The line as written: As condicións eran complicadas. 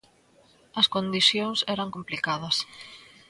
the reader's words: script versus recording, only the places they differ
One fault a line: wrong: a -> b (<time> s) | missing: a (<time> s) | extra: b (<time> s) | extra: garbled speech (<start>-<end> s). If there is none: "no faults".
no faults